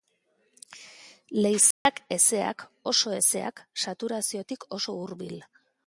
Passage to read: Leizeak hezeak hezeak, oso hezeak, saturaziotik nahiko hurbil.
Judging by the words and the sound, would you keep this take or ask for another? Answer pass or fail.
fail